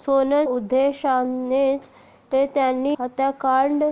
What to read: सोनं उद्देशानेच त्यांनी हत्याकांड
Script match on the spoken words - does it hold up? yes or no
yes